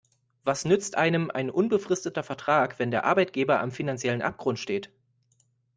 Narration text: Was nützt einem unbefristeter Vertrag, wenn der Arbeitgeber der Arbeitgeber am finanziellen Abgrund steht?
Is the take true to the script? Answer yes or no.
no